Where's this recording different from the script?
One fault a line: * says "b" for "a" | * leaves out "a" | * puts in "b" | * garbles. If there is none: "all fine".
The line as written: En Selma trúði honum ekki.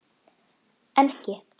* leaves out "Selma trúði honum"